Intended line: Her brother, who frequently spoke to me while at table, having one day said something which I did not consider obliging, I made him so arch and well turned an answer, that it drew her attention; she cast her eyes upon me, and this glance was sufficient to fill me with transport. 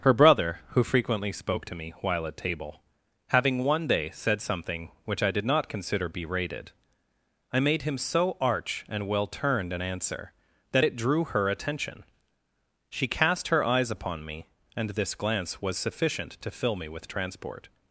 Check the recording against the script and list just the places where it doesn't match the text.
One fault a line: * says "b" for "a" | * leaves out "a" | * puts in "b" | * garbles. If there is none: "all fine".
* says "berated" for "obliging"